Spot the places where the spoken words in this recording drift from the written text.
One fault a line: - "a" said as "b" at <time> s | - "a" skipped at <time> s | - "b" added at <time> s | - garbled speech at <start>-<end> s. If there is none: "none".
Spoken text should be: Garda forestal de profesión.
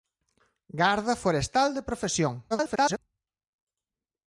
- garbled speech at 2.5-3.0 s